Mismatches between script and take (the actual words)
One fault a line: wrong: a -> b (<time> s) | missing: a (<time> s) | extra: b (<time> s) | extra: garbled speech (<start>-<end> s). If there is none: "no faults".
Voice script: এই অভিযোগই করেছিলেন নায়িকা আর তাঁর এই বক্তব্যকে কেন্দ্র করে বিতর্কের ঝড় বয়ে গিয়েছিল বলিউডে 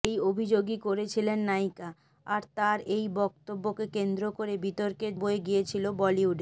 missing: ঝড় (5.1 s)